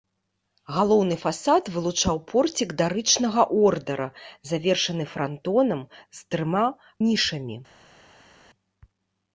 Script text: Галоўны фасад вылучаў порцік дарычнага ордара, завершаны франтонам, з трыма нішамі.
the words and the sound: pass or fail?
pass